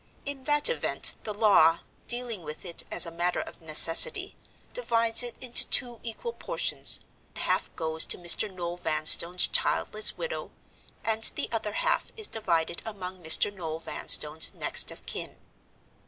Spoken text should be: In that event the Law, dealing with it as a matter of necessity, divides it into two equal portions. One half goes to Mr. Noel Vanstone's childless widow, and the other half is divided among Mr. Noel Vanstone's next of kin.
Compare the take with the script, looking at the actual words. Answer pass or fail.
fail